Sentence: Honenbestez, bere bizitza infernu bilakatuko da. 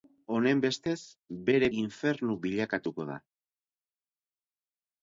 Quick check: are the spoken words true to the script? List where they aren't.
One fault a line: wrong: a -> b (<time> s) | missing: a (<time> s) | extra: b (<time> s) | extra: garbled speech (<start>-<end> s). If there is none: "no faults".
missing: bizitza (1.7 s)